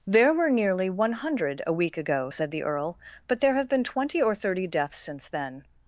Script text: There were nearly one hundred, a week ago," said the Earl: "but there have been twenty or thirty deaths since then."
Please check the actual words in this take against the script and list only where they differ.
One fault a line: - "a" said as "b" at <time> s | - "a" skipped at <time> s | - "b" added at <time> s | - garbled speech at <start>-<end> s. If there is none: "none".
none